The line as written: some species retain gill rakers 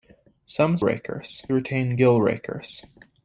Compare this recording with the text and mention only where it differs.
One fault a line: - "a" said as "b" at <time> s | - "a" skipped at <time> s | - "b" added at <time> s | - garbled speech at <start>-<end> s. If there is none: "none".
- "species" said as "rakers" at 0.8 s